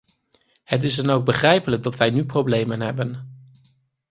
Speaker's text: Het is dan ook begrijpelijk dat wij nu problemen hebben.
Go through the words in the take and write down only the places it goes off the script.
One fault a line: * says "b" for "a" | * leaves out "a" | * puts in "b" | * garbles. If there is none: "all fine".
all fine